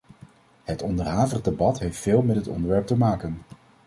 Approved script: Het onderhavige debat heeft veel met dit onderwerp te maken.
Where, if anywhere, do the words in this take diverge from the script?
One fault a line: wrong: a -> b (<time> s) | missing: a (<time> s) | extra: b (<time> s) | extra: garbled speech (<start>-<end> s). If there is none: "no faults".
no faults